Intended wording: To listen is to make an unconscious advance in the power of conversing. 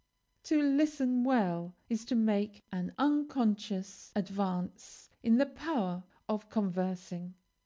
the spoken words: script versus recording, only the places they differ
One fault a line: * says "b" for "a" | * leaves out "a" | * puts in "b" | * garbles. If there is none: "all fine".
* puts in "well"